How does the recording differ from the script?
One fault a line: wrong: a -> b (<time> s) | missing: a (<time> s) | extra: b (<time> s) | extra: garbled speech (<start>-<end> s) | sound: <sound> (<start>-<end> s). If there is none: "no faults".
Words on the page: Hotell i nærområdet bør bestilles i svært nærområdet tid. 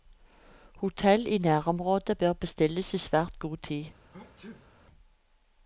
wrong: nærområdet -> god (3.4 s)
sound: sneeze (4.1-4.7 s)